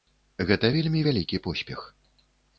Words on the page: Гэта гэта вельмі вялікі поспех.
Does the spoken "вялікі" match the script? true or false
true